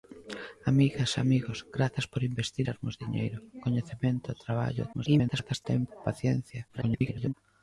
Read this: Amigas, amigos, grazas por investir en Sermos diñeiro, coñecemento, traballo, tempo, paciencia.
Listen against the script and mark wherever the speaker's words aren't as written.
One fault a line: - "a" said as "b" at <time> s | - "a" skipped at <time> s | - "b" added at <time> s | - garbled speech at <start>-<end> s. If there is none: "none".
- "en" skipped at 2.6 s
- garbled speech at 4.9-5.7 s
- garbled speech at 6.7-7.3 s